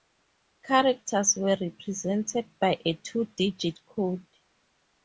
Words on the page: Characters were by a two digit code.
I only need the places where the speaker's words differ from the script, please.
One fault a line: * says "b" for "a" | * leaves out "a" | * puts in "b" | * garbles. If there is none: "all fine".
* puts in "represented"